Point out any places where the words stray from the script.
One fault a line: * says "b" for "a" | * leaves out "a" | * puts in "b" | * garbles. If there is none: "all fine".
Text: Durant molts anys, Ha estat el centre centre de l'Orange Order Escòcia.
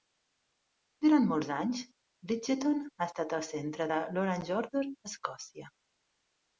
* puts in "Bridgeton"
* leaves out "centre"
* puts in "a"